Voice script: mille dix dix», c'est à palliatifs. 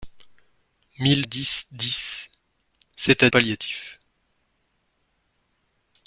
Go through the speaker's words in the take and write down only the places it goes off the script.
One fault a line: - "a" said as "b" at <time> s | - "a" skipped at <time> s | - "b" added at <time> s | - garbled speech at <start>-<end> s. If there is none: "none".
none